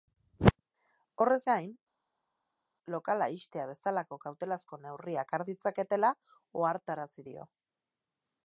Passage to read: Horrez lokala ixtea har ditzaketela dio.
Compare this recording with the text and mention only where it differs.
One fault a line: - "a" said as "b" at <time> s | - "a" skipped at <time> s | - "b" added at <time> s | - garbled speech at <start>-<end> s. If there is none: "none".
- "gain" added at 1.5 s
- "bezalako kautelazko neurriak" added at 3.7 s
- "ohartarazi" added at 6.6 s